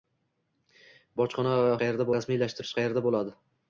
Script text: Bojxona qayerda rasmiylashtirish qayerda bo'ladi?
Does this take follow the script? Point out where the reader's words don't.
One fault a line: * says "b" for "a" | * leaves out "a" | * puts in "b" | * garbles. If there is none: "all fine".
all fine